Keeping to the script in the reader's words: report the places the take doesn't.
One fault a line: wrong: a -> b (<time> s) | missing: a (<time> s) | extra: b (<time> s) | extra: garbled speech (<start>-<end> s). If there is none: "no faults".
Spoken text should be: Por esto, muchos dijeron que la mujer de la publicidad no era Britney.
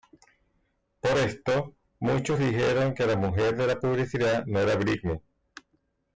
no faults